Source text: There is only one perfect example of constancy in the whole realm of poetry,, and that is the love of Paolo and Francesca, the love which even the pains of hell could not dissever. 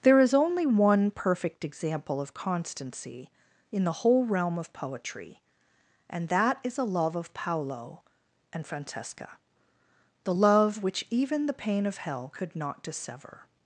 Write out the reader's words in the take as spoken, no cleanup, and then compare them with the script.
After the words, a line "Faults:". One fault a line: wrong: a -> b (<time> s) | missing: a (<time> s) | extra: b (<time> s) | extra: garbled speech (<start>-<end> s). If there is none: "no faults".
There is only one perfect example of constancy in the whole realm of poetry,, and that is a love of Paolo and Francesca, the love which even the pain of hell could not dissever.
Faults:
wrong: the -> a (6.8 s)
wrong: pains -> pain (11.5 s)